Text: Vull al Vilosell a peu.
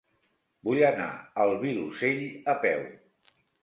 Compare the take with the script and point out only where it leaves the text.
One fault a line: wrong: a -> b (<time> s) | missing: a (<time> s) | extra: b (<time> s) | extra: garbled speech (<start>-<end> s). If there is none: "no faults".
extra: anar (0.9 s)